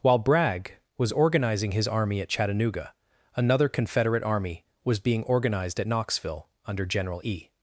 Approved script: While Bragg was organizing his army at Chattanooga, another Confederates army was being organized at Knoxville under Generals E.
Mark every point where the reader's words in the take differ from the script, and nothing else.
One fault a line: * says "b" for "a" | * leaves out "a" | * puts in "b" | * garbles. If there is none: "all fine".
* says "Confederate" for "Confederates"
* says "General" for "Generals"